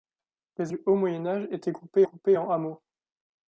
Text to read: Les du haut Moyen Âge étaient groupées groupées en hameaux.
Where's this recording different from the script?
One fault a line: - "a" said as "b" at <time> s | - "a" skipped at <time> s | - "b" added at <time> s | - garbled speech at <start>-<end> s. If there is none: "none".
none